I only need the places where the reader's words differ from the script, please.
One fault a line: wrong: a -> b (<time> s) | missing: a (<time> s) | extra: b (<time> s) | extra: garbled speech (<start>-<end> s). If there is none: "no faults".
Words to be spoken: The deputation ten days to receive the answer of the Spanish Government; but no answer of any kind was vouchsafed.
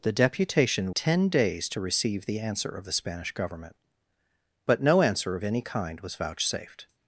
no faults